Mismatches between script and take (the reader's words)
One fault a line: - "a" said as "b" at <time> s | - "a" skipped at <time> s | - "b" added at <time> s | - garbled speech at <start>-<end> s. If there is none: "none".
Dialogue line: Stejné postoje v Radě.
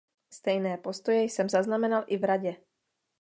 - "jsem zaznamenal i" added at 1.2 s